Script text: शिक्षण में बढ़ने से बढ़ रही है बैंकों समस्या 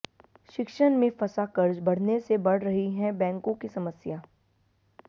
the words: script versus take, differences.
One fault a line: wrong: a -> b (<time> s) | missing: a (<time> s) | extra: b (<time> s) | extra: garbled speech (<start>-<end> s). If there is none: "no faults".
extra: फंसा कर्ज (1.2 s)
extra: की (3.5 s)